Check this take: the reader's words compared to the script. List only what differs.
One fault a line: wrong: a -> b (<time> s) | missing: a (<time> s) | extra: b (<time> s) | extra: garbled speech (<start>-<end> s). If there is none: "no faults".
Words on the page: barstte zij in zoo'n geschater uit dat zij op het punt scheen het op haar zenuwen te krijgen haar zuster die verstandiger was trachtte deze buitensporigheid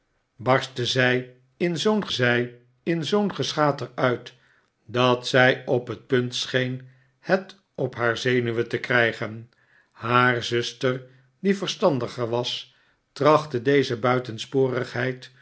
extra: zij in zoo'n (2.1 s)